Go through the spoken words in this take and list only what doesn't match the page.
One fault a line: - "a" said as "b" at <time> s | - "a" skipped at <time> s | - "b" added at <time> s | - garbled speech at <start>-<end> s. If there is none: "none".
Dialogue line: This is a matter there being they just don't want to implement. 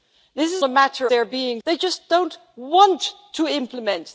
none